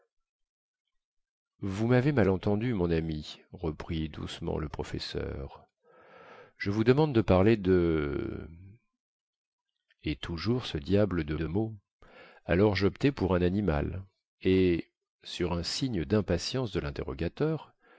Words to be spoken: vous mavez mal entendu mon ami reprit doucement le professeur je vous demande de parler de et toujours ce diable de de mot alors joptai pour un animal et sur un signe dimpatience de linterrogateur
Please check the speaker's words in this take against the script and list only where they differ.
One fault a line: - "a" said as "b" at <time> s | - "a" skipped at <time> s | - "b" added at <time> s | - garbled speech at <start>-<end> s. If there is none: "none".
none